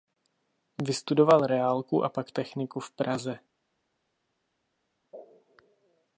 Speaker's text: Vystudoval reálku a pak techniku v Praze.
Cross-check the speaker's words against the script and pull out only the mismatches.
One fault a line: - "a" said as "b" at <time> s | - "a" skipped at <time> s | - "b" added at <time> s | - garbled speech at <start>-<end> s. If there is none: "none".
none